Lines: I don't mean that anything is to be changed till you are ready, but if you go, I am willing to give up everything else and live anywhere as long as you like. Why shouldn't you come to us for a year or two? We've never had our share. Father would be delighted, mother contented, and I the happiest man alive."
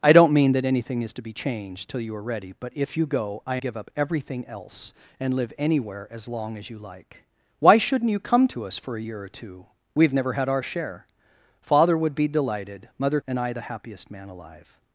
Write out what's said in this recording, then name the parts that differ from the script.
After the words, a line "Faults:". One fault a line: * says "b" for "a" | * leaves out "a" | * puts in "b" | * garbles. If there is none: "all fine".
I don't mean that anything is to be changed till you are ready, but if you go, I give up everything else and live anywhere as long as you like. Why shouldn't you come to us for a year or two? We've never had our share. Father would be delighted, mother and I the happiest man alive."
Faults:
* leaves out "am willing to"
* leaves out "contented"